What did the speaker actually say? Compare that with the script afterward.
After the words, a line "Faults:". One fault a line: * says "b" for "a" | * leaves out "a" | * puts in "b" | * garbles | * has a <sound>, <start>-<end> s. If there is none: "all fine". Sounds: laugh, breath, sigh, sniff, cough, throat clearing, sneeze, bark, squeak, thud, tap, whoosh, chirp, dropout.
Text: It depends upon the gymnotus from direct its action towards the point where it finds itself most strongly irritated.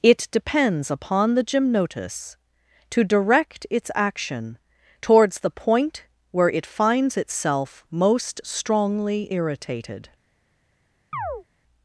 It depends upon the gymnotus to direct its action towards the point where it finds itself most strongly irritated.
Faults:
* says "to" for "from"
* has a chirp, 11.1-11.4 s